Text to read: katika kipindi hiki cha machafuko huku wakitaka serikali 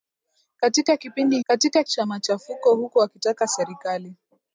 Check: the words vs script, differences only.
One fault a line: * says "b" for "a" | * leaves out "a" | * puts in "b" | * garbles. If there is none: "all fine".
* says "katika" for "hiki"